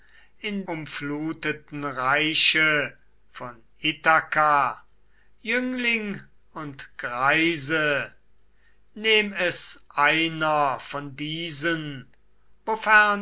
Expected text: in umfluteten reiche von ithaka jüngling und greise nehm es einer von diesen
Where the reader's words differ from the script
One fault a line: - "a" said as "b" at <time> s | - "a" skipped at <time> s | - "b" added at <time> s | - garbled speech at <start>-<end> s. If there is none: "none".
none